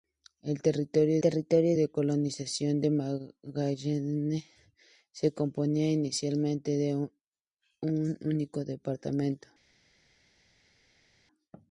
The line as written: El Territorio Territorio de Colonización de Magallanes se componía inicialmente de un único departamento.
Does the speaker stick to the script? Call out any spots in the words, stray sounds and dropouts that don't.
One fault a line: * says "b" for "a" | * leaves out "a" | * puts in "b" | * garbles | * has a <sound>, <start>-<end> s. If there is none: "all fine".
all fine